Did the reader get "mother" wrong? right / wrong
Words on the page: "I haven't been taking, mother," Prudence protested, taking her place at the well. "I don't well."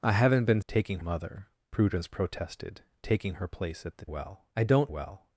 right